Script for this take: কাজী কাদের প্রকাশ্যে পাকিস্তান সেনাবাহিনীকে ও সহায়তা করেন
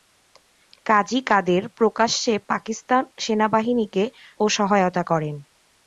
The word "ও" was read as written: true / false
true